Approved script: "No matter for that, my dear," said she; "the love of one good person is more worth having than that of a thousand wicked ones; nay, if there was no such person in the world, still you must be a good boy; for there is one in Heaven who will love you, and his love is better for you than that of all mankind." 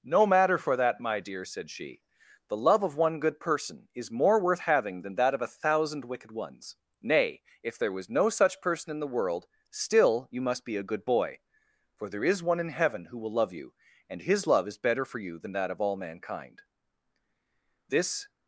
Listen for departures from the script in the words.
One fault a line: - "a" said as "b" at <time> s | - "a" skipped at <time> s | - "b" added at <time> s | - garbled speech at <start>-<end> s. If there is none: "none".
- "This" added at 17.9 s